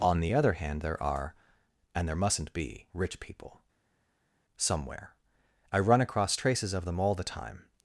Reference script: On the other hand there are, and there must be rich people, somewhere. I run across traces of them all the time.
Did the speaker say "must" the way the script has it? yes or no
no